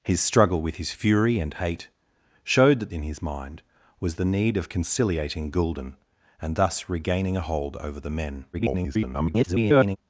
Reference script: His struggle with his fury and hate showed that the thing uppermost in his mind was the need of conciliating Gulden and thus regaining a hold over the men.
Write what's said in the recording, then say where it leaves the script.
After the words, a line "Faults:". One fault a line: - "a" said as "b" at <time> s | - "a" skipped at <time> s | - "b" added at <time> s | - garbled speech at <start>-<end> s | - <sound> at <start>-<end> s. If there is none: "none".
His struggle with his fury and hate showed that in his mind was the need of conciliating Gulden and thus regaining a hold over the men. [garbled]
Faults:
- "the thing uppermost" skipped at 2.9 s
- garbled speech at 8.5-10.0 s